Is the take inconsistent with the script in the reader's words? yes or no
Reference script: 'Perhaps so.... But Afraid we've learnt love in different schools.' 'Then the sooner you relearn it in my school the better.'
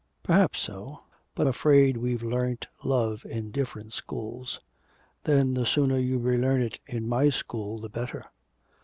no